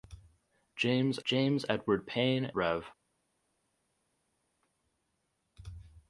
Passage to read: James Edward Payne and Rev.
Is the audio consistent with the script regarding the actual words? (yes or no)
no